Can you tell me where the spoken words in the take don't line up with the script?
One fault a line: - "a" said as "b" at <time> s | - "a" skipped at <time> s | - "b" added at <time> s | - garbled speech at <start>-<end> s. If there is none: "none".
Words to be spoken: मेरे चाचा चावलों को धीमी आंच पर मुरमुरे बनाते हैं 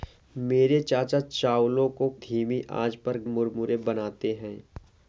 none